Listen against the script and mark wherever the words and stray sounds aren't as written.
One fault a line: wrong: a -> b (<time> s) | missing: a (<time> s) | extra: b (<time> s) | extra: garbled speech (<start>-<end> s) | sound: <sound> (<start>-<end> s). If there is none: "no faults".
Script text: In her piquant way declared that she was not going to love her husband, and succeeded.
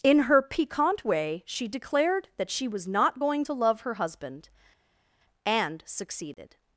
extra: she (1.4 s)